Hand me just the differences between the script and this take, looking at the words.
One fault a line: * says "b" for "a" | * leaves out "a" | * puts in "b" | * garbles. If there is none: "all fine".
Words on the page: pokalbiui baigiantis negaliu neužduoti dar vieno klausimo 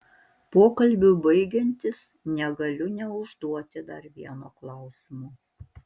all fine